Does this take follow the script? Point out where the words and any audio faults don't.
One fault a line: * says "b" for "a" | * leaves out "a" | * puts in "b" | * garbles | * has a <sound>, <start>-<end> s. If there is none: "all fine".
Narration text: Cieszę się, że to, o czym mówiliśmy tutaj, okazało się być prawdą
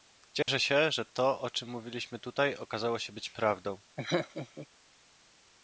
* has a dropout, 0.4-0.5 s
* has a laugh, 4.0-4.7 s